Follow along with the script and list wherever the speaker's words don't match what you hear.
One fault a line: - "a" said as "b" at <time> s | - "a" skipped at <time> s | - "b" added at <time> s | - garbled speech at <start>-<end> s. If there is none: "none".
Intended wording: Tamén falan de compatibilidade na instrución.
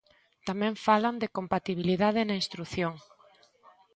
none